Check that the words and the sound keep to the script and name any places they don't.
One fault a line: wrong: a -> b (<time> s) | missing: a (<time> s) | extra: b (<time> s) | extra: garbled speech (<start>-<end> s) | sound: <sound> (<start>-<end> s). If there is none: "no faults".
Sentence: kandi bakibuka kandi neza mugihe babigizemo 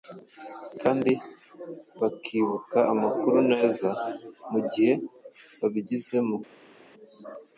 wrong: kandi -> amakuru (2.9 s)